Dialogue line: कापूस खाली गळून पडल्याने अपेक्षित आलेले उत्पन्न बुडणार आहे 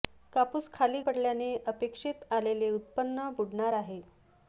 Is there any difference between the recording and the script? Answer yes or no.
yes